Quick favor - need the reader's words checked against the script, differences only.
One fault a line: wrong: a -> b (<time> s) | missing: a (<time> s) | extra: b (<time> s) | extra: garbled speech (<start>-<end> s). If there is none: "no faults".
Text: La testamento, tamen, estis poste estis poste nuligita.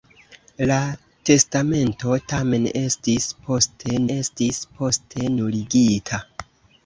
no faults